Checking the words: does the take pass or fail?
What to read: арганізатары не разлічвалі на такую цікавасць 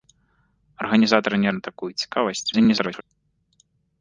fail